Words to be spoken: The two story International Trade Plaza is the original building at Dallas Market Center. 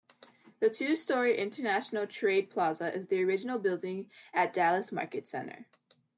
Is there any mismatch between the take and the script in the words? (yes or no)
no